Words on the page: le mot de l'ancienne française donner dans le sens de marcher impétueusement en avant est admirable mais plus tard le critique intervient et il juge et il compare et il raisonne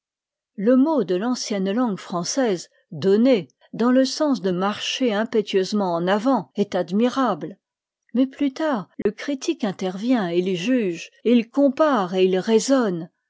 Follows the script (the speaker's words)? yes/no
no